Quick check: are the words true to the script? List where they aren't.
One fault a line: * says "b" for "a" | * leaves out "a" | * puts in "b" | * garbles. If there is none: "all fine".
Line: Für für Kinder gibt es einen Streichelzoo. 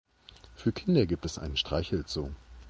* leaves out "für"